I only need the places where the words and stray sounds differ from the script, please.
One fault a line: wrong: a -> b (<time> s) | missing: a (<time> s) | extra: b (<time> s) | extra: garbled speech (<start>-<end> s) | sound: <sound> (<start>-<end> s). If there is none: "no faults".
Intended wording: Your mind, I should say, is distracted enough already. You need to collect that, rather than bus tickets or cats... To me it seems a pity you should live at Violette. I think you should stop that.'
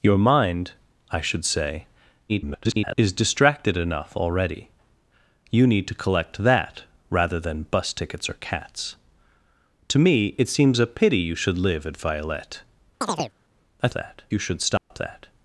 extra: garbled speech (2.3-3.0 s)
sound: chirp (13.0-13.3 s)
wrong: think -> that (13.9 s)
sound: dropout (14.8-14.9 s)